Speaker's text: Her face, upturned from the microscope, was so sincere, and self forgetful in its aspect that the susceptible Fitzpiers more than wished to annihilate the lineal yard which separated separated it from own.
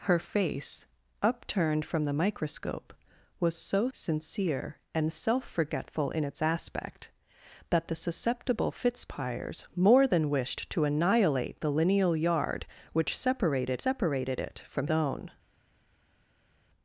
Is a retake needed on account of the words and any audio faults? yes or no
no